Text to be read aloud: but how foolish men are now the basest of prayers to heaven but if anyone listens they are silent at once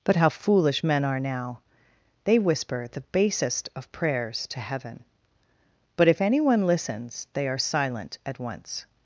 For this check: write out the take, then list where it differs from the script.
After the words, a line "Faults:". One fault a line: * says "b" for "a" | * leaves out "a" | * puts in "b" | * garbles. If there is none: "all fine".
but how foolish men are now they whisper the basest of prayers to heaven but if anyone listens they are silent at once
Faults:
* puts in "they whisper"